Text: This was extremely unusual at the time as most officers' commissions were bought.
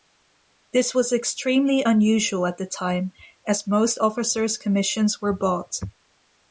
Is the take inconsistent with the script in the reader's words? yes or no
no